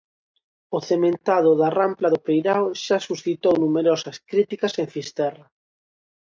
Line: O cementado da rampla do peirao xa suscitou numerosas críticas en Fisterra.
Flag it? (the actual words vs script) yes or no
no